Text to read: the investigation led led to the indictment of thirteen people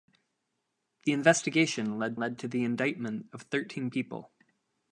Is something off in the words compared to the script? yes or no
no